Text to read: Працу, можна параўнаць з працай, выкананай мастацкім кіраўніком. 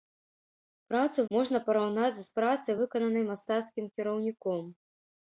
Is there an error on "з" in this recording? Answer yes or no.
no